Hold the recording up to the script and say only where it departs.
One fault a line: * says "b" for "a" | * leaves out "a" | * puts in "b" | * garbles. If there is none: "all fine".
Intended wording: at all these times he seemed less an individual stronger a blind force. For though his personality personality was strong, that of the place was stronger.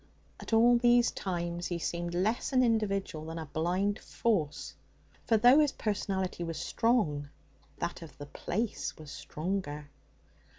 * says "than" for "stronger"
* leaves out "personality"